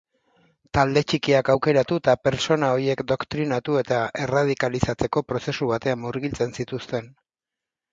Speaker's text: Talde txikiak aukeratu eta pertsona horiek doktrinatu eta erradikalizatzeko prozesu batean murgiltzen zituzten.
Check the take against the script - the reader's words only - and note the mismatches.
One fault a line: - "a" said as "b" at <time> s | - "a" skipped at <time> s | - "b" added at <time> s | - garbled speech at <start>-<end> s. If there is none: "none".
none